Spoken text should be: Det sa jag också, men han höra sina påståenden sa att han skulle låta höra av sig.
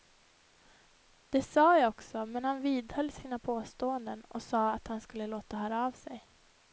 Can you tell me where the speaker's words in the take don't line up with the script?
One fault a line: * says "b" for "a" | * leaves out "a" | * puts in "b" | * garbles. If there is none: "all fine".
* says "vidhöll" for "höra"
* puts in "och"